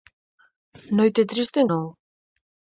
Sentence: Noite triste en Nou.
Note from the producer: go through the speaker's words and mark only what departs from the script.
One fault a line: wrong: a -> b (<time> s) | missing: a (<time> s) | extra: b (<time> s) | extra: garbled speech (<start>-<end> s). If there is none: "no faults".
no faults